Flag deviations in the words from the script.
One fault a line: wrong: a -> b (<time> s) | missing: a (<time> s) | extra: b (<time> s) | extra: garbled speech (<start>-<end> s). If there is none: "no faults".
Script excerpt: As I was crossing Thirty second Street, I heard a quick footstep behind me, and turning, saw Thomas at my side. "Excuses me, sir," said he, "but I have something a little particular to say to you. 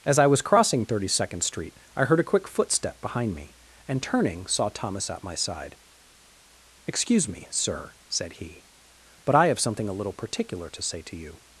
wrong: Excuses -> Excuse (6.9 s)